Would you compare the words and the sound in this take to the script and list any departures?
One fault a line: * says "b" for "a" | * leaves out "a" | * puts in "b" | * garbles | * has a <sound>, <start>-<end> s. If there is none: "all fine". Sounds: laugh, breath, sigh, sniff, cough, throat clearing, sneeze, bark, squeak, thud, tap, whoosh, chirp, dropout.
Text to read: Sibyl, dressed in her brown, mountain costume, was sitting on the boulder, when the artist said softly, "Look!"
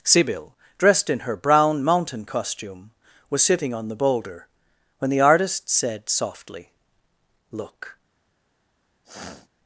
* has a sniff, 9.0-9.5 s